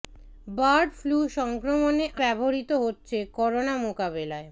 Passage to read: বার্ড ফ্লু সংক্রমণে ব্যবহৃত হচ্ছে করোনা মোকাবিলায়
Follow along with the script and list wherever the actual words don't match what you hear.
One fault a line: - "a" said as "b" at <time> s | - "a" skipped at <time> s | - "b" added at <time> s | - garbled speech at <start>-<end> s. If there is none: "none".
none